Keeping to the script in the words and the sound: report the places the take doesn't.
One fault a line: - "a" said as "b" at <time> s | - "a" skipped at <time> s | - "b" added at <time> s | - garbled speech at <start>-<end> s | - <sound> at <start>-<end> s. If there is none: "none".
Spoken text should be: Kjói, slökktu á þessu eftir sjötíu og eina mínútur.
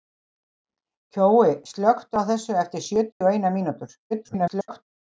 - dropout at 3.1-3.2 s
- garbled speech at 4.1-4.8 s